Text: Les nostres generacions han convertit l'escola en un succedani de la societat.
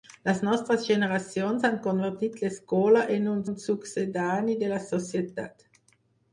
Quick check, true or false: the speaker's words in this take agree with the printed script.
false